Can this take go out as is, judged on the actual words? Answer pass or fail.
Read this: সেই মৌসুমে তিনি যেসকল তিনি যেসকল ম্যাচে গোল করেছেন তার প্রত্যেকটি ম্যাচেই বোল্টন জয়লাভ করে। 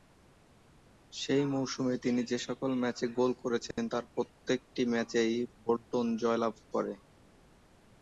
fail